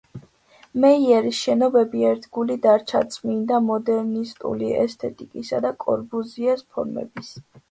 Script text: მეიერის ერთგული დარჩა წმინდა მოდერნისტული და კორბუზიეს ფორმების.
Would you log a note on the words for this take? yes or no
yes